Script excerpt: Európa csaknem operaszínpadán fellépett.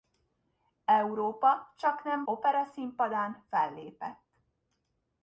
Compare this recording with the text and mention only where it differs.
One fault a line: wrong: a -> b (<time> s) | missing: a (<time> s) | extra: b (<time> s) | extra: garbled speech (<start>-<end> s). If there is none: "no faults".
no faults